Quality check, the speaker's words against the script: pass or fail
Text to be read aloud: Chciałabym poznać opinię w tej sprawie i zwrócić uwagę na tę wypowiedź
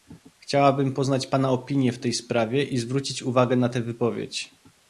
fail